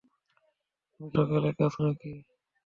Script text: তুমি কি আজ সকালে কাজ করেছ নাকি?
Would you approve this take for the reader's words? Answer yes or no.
no